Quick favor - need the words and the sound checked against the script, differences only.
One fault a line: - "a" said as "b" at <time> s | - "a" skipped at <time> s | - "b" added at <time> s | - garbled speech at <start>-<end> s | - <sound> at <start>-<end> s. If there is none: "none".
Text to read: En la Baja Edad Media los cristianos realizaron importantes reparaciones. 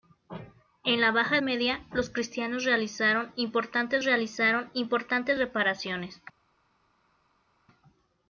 - "Edad" skipped at 1.4 s
- "realizaron importantes" added at 4.0 s